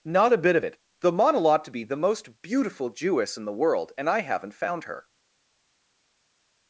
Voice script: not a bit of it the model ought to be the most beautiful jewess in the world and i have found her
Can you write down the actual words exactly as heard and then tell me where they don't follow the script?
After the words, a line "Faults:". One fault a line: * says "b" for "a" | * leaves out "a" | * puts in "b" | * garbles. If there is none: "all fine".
not a bit of it the model ought to be the most beautiful jewess in the world and i haven't found her
Faults:
* says "haven't" for "have"